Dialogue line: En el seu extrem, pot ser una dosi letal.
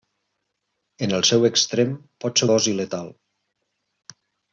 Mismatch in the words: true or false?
true